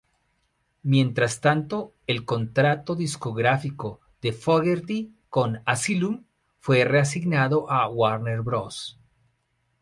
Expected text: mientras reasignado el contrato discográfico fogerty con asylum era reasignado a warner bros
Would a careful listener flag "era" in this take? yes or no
yes